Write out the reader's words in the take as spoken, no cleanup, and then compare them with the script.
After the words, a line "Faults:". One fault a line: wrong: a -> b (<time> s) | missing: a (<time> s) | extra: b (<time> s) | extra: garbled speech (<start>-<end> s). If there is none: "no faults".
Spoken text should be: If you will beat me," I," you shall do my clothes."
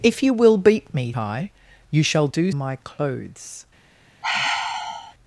If you will beat me," I," you shall do my clothes."
Faults:
no faults